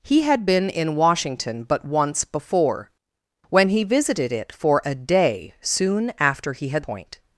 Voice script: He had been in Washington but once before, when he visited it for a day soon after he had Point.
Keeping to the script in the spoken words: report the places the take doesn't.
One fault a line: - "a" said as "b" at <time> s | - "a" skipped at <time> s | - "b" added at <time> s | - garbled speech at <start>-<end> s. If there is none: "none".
none